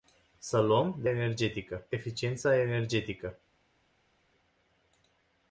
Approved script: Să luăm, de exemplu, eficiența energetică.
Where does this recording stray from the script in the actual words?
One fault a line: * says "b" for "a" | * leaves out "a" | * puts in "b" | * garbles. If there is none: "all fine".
* says "energetică" for "exemplu"